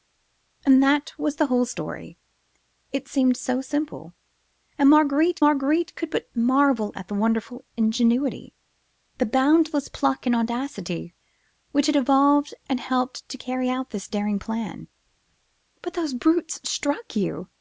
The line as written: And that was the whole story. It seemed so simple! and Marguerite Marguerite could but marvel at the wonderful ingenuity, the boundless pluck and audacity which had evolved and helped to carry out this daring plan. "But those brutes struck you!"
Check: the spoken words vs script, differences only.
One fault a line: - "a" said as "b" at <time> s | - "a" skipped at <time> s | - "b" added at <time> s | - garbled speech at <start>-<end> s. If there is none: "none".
none